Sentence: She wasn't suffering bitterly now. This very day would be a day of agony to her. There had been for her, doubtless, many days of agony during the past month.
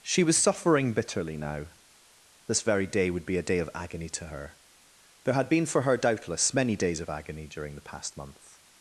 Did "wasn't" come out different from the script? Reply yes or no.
yes